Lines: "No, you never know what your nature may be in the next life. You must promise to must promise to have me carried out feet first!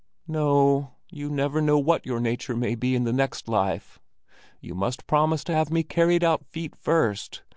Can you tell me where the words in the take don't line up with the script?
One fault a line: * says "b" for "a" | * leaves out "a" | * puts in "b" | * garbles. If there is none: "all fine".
* leaves out "must promise to"